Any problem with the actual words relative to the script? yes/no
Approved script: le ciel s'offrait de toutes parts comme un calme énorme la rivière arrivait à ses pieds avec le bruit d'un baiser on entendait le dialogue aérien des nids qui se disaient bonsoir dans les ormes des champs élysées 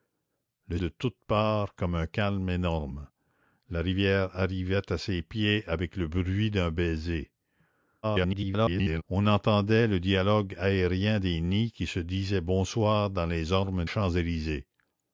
yes